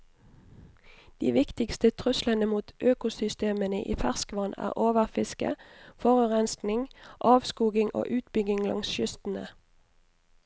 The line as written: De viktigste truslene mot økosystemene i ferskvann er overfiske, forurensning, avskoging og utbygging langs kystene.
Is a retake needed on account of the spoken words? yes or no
no